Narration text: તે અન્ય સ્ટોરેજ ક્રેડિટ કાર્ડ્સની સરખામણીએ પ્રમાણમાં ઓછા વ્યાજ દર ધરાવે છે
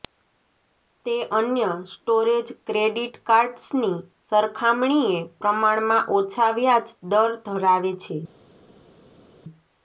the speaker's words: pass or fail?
pass